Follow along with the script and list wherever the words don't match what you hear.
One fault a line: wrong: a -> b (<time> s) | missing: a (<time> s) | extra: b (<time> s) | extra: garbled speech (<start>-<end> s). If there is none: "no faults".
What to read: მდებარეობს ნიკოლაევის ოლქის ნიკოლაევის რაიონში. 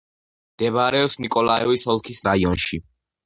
missing: ნიკოლაევის (2.2 s)